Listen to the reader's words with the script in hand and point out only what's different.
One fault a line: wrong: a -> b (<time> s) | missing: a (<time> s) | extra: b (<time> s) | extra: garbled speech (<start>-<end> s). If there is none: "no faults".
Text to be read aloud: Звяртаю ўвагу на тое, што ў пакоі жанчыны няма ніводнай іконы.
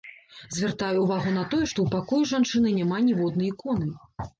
no faults